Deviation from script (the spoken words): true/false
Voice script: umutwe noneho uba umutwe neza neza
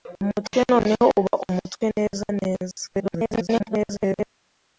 true